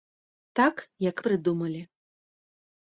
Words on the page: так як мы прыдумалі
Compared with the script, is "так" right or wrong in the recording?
right